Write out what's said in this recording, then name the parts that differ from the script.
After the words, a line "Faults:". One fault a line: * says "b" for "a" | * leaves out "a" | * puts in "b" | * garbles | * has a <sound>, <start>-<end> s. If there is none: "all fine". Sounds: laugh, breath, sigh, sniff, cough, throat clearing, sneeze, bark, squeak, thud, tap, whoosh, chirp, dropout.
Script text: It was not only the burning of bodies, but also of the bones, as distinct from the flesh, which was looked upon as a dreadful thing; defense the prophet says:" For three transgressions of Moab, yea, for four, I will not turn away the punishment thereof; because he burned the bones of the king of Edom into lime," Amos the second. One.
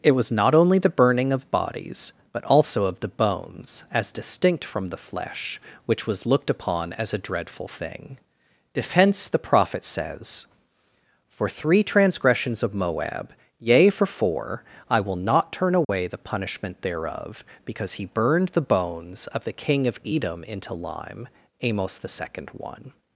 It was not only the burning of bodies, but also of the bones, as distinct from the flesh, which was looked upon as a dreadful thing; defense the prophet says:" For three transgressions of Moab, yea, for four, I will not turn away the punishment thereof; because he burned the bones of the king of Edom into lime," Amos the second. One.
Faults:
* has a dropout, 15.8-15.9 s